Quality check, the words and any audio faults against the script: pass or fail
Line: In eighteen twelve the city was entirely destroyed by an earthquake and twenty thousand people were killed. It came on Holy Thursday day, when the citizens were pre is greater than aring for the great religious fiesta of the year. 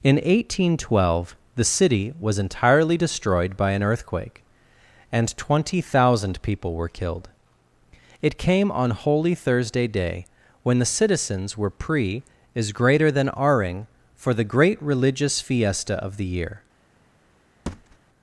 fail